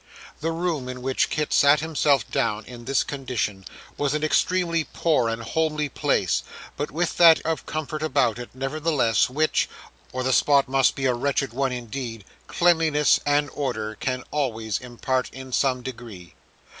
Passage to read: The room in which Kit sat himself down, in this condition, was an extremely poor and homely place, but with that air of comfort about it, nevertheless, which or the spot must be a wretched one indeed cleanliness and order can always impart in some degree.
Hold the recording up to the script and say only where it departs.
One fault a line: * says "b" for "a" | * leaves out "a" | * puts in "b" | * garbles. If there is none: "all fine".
* leaves out "air"